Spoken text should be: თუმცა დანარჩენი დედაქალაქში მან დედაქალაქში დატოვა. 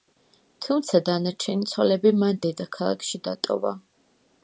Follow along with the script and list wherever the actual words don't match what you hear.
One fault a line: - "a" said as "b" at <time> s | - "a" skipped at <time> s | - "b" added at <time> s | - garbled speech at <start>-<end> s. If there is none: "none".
- "დედაქალაქში" said as "ცოლები" at 1.7 s